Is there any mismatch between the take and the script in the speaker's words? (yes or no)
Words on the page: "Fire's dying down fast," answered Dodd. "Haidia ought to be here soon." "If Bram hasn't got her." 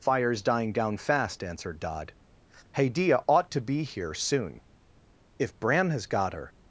yes